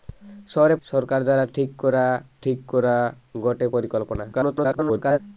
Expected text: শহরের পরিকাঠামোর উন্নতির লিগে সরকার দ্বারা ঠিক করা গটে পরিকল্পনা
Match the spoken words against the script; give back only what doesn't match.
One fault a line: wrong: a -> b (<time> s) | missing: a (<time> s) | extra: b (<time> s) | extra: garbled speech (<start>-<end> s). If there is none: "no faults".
wrong: পরিকাঠামোর উন্নতির লিগে সরকার দ্বারা -> সরকার দ্বারা ঠিক করা (0.8 s)
extra: garbled speech (4.3-5.2 s)